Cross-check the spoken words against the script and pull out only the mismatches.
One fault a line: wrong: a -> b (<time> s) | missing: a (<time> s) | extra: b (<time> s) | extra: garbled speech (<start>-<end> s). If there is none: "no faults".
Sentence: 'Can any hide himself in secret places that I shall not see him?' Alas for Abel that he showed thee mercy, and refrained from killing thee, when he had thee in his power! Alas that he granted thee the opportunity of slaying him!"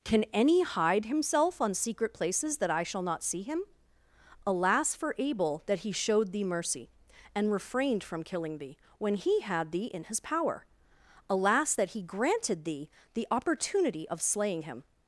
wrong: in -> on (1.6 s)